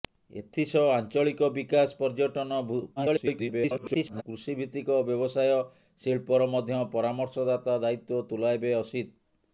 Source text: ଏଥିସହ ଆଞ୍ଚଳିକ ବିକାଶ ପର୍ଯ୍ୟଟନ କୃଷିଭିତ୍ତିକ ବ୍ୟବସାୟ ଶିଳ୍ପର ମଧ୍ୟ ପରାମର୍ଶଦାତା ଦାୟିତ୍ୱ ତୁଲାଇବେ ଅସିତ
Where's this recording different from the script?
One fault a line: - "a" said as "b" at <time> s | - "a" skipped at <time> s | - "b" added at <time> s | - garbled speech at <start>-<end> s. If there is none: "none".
- garbled speech at 3.0-4.2 s